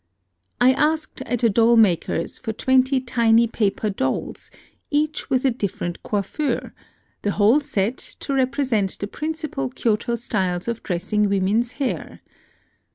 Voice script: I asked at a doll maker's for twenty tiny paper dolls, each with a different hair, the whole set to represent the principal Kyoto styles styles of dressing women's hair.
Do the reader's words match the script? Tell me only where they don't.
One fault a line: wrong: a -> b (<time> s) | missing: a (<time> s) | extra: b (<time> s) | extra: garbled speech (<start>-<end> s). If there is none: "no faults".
wrong: hair -> coiffure (6.0 s)
missing: styles (10.7 s)